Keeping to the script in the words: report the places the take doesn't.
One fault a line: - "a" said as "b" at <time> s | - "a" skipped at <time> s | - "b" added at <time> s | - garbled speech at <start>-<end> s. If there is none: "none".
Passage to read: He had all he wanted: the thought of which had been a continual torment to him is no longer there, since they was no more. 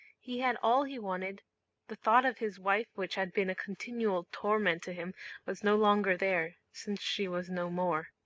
- "his wife" added at 2.4 s
- "is" said as "was" at 5.4 s
- "they" said as "she" at 7.0 s